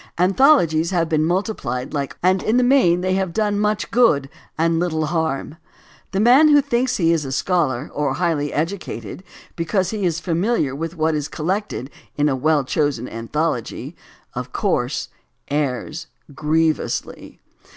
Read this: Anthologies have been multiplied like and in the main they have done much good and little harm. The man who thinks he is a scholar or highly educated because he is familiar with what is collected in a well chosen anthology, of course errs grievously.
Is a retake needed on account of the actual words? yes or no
no